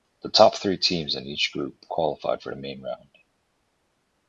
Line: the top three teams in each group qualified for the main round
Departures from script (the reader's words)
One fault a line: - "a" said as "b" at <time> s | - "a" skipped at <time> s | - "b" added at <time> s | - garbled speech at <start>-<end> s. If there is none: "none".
none